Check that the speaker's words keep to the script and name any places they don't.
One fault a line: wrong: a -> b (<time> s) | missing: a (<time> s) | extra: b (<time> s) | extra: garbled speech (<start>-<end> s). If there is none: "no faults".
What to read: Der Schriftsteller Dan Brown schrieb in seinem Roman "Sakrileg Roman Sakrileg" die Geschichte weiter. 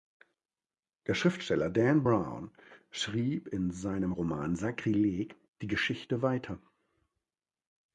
missing: Roman Sakrileg (5.4 s)